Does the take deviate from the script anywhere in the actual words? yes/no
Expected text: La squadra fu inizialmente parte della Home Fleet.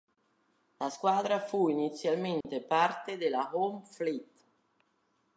no